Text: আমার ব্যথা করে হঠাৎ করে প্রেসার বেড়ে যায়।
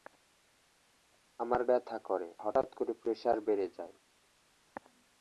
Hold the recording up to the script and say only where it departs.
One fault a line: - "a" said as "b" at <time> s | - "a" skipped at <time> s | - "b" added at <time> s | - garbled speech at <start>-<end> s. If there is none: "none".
none